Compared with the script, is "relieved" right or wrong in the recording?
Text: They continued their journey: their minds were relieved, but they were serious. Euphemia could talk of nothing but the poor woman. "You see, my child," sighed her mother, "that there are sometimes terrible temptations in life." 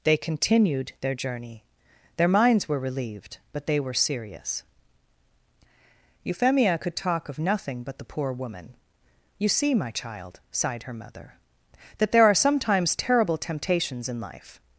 right